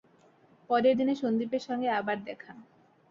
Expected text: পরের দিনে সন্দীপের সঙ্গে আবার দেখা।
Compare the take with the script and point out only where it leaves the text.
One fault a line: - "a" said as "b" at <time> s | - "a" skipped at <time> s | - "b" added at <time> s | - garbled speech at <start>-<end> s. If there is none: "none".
none